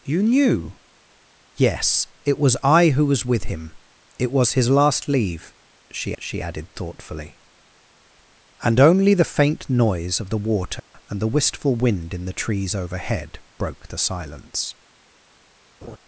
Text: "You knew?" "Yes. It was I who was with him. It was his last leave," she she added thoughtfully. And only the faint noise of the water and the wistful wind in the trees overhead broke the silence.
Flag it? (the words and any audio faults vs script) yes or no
yes